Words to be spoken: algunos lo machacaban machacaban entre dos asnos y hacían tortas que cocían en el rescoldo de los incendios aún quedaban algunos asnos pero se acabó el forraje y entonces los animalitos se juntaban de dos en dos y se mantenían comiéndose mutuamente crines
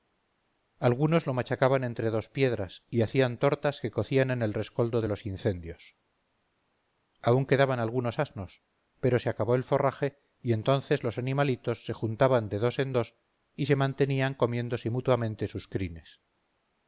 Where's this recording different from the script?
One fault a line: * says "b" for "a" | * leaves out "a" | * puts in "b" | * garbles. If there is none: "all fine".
* leaves out "machacaban"
* says "piedras" for "asnos"
* puts in "sus"